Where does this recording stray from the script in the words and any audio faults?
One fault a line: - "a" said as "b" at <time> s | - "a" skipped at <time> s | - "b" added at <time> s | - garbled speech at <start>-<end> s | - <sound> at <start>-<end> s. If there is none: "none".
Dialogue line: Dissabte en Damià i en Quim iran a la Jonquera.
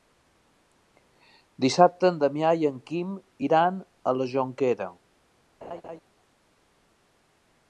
- laugh at 5.6-6.0 s